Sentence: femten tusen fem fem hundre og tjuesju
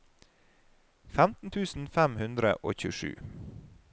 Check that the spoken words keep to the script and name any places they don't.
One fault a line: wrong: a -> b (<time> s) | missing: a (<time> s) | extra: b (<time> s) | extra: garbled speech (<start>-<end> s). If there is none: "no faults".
missing: fem (2.2 s)